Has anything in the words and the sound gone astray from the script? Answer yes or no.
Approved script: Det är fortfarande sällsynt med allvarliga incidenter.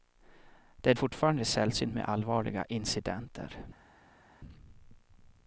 no